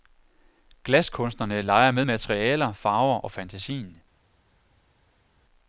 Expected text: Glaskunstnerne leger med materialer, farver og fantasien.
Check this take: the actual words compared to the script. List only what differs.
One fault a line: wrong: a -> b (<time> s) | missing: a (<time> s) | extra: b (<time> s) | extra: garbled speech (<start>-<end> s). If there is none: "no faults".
no faults